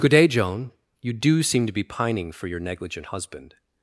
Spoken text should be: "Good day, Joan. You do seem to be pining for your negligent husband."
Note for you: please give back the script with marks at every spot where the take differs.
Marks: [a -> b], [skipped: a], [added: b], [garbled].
"Good day, Joan. You do seem to be pining for your negligent husband."